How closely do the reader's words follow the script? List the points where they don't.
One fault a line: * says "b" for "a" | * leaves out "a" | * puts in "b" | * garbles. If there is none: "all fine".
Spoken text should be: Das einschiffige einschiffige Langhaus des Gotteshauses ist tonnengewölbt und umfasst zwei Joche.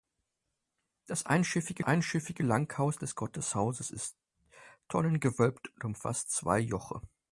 all fine